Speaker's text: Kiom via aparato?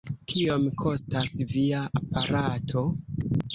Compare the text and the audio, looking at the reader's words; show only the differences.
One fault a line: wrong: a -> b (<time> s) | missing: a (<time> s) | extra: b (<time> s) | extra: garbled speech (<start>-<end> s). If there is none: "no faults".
extra: kostas (0.8 s)